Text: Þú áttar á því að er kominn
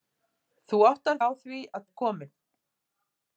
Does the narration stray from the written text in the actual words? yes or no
no